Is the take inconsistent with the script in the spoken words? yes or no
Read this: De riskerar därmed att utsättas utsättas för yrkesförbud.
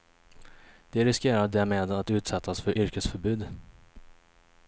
yes